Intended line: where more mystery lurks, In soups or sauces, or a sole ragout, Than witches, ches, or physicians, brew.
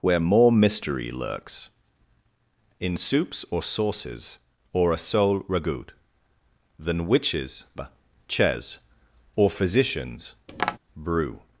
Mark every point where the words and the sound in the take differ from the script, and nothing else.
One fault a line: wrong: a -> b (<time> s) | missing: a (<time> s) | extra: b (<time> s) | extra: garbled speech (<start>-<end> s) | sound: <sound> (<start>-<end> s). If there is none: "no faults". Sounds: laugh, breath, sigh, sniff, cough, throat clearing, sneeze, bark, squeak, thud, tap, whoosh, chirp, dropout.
sound: tap (10.5-10.8 s)